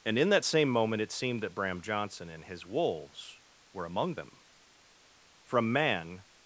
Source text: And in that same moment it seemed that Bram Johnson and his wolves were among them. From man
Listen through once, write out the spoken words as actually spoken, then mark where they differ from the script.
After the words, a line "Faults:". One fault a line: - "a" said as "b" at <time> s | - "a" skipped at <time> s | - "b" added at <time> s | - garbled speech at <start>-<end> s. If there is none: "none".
And in that same moment it seemed that Bram Johnson and his wolves were among them. From man
Faults:
none